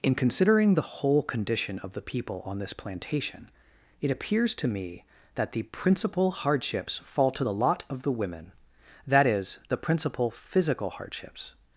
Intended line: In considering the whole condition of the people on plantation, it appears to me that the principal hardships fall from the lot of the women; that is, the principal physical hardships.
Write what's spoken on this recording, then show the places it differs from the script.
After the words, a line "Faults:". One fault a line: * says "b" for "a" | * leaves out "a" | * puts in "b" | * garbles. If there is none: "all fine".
In considering the whole condition of the people on this plantation, it appears to me that the principal hardships fall to the lot of the women; that is, the principal physical hardships.
Faults:
* puts in "this"
* says "to" for "from"